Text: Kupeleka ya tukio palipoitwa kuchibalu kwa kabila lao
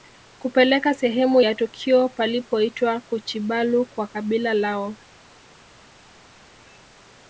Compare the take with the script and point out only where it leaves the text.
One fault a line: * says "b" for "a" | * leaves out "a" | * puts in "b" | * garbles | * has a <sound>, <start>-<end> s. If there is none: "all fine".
* puts in "sehemu"